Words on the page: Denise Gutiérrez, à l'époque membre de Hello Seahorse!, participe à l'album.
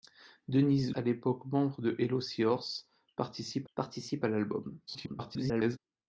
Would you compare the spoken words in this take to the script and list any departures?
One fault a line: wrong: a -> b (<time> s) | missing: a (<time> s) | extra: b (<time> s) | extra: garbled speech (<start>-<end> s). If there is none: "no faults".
missing: Gutiérrez (0.9 s)
extra: participe (3.7 s)
extra: garbled speech (4.9-5.8 s)